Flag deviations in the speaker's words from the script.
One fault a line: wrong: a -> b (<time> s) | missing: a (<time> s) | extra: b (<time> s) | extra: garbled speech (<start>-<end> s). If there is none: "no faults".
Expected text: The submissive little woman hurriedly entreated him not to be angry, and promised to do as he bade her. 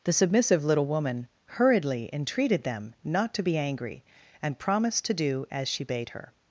wrong: him -> them (2.6 s)
wrong: he -> she (5.7 s)